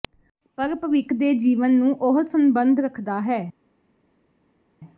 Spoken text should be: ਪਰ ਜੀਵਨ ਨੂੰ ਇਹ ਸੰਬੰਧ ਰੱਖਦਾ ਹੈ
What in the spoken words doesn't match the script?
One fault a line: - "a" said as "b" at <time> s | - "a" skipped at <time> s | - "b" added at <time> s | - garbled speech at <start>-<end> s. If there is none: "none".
- "ਭਵਿੱਖ ਦੇ" added at 0.8 s
- "ਇਹ" said as "ਉਹ" at 2.0 s